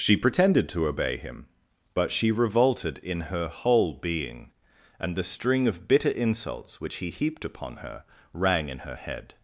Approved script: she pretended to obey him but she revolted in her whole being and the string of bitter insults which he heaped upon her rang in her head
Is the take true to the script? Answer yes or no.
yes